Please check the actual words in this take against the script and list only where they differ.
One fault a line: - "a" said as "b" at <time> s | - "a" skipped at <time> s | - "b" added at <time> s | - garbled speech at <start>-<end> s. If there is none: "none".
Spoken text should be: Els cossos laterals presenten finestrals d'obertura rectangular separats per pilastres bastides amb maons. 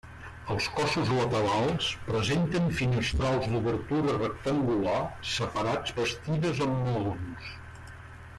- "per pilastres" skipped at 6.0 s